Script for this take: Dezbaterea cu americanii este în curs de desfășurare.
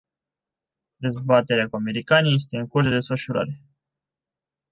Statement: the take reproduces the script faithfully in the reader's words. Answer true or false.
true